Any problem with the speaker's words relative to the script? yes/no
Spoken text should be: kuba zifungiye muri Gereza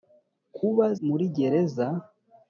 yes